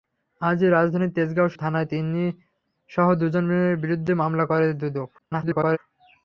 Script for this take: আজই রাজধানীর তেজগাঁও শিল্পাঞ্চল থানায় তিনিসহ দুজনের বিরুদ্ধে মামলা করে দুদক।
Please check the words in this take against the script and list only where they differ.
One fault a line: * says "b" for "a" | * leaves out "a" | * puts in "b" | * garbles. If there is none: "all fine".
* leaves out "শিল্পাঞ্চল"
* garbles